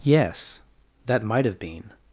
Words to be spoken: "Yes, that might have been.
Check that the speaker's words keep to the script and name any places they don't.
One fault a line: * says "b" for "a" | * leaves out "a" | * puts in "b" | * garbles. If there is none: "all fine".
all fine